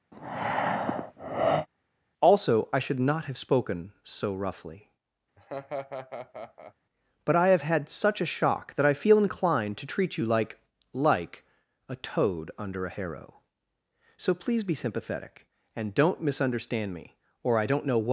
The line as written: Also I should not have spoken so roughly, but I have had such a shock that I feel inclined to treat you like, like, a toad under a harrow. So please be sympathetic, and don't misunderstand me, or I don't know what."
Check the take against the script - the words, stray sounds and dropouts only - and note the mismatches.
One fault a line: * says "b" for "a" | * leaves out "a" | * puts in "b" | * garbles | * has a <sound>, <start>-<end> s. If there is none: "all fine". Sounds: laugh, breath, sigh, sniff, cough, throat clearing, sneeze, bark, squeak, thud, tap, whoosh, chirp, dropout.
* has a breath, 0.1-1.7 s
* has a laugh, 5.4-6.7 s